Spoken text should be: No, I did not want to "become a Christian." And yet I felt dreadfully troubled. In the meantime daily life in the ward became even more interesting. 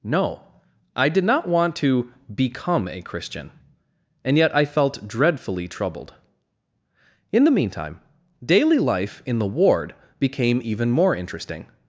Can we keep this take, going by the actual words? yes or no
yes